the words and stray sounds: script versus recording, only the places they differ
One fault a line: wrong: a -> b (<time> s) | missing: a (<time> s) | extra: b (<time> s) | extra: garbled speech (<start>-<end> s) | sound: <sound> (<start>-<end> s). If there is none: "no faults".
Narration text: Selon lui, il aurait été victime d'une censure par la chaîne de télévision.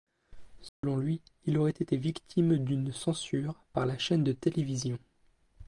sound: dropout (0.7-0.8 s)